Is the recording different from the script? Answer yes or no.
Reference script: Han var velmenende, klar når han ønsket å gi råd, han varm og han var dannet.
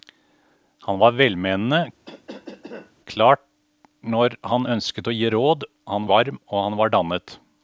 no